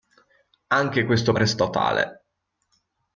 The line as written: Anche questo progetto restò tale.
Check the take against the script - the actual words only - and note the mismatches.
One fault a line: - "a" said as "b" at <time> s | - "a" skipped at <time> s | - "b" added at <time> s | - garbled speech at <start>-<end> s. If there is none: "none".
- "progetto" skipped at 1.4 s